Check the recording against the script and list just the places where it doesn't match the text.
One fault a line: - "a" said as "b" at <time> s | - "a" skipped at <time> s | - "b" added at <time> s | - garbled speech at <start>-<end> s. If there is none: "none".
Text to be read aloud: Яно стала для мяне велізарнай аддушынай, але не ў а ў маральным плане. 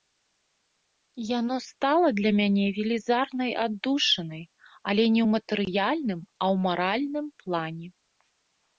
- "матэрыяльным" added at 5.4 s